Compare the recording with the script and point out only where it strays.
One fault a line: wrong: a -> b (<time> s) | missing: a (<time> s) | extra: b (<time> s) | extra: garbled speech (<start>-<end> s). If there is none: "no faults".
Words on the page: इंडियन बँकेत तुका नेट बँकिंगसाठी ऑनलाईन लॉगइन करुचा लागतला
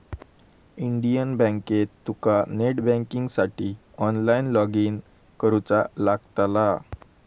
no faults